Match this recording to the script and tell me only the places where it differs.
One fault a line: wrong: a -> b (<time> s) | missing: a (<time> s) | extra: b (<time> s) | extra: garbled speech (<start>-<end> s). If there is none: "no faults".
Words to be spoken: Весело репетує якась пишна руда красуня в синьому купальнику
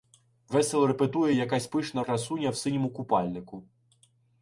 missing: руда (2.0 s)